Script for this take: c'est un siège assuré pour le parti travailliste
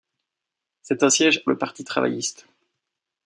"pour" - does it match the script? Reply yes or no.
no